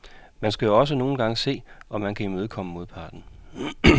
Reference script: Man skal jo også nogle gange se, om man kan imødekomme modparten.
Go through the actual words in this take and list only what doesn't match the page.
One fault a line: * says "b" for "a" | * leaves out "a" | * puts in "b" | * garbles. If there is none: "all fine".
all fine